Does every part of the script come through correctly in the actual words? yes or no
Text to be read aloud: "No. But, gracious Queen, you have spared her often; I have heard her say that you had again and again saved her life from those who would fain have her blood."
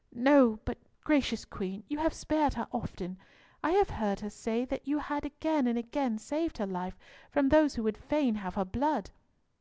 yes